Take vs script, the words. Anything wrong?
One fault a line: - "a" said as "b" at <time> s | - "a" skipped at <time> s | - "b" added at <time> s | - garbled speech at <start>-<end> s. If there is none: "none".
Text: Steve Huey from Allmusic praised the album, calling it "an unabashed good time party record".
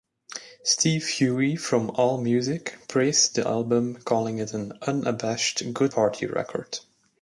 - "time" skipped at 5.9 s